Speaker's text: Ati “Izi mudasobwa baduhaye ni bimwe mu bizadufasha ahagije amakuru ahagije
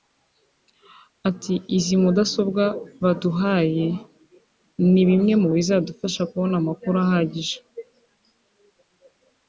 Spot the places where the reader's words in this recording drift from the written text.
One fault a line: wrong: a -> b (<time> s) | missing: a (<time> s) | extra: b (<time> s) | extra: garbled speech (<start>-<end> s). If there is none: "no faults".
wrong: ahagije -> kubona (6.3 s)